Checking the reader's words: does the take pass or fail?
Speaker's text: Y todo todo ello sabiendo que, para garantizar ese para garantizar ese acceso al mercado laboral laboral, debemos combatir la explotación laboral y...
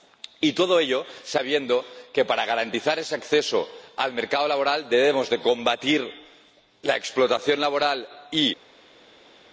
fail